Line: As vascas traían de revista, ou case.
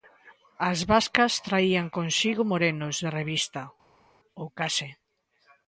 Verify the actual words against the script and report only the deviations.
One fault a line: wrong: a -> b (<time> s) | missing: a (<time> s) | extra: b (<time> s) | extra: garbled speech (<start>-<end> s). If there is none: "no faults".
extra: consigo morenos (2.0 s)